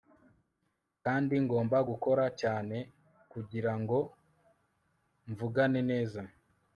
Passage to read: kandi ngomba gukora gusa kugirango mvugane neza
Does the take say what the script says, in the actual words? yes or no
no